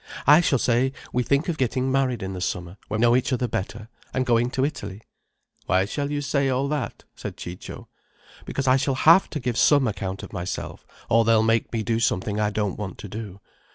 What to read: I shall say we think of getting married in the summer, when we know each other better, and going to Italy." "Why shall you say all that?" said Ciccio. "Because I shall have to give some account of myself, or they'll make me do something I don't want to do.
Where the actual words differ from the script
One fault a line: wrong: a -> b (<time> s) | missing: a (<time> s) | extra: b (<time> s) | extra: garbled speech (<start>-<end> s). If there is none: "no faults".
missing: we (3.0 s)